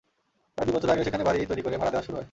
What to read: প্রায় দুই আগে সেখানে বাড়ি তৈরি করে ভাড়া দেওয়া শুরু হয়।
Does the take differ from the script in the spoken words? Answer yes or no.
yes